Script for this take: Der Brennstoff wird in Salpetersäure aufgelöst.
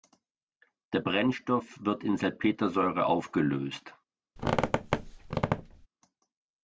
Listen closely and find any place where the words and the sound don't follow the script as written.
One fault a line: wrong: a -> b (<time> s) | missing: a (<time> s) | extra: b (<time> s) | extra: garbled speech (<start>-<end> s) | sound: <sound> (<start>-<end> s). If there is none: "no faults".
sound: squeak (4.4-5.9 s)